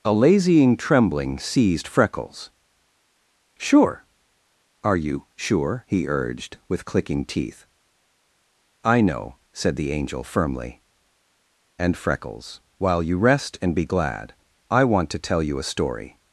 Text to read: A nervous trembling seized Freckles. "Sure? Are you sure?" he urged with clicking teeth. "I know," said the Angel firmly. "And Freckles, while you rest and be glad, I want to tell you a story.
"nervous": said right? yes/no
no